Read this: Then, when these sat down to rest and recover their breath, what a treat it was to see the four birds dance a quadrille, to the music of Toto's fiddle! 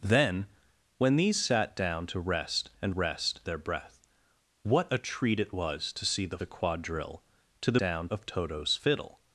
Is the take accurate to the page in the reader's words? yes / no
no